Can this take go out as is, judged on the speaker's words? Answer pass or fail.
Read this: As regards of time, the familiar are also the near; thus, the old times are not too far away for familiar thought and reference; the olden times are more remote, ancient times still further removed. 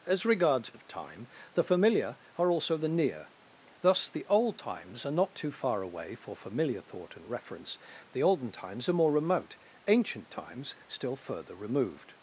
pass